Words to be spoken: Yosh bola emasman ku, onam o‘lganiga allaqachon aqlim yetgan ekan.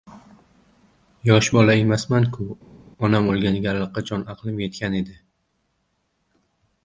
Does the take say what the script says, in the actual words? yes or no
no